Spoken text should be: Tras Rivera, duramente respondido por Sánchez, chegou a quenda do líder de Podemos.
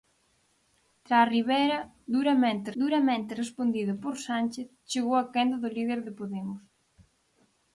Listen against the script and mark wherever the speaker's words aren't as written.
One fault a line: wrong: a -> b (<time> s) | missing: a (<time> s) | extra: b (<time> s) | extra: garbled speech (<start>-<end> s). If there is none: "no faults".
extra: duramente (2.8 s)